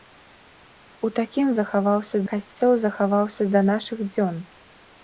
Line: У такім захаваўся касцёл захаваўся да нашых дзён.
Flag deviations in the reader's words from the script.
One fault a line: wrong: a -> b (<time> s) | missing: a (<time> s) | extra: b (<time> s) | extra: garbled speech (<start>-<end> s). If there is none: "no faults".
no faults